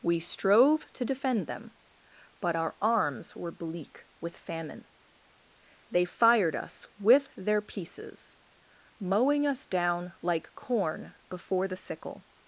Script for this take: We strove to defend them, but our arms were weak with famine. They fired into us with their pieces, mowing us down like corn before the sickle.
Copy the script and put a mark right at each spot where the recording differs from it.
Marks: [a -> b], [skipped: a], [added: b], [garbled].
We strove to defend them, but our arms were [weak -> bleak] with famine. They fired [skipped: into] us with their pieces, mowing us down like corn before the sickle.